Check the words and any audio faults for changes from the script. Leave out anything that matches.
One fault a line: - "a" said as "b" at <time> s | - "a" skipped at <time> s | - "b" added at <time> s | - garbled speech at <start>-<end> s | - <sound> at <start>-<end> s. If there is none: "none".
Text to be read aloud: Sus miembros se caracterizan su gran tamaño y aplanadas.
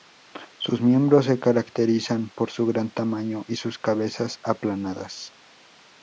- "por" added at 2.3 s
- "sus cabezas" added at 3.5 s